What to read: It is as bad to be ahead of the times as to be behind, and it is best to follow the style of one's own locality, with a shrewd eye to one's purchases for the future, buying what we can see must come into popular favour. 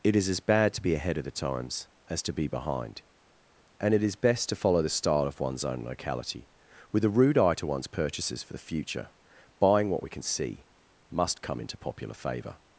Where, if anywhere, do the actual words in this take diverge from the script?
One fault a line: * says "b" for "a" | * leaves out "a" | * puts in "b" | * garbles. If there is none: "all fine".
* says "rude" for "shrewd"